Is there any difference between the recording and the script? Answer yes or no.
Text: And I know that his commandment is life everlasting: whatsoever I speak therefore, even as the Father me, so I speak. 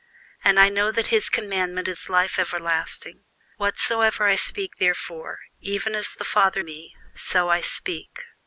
no